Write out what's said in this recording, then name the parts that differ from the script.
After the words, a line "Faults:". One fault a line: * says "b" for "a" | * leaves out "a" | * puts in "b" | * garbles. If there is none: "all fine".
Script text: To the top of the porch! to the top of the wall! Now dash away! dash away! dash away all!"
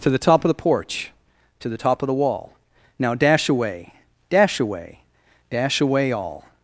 To the top of the porch! to the top of the wall! Now dash away! dash away! dash away all!"
Faults:
all fine